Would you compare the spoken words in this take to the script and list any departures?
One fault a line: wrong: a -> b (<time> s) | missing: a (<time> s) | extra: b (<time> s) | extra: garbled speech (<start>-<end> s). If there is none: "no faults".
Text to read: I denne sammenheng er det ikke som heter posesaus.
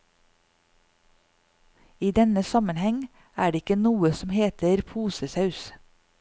extra: noe (3.8 s)